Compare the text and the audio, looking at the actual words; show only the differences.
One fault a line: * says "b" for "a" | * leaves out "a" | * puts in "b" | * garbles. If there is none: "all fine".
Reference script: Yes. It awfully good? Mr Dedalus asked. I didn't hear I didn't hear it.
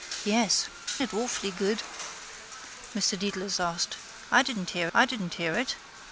all fine